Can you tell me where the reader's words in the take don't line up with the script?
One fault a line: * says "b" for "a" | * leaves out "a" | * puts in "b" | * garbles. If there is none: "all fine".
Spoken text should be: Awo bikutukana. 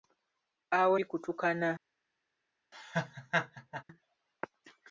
all fine